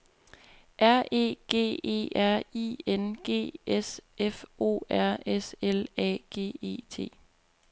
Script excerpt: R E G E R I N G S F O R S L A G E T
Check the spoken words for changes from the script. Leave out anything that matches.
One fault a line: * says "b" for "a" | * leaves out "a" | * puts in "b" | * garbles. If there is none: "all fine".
all fine